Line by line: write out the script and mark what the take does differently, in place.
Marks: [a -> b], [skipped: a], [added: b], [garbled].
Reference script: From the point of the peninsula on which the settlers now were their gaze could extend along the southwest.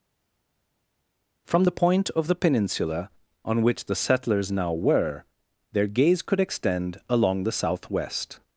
From the point of the peninsula on which the settlers now were their gaze could extend along the southwest.